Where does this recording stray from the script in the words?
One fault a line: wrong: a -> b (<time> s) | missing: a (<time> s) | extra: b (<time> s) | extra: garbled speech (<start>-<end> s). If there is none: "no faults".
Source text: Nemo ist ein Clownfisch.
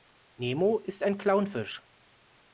no faults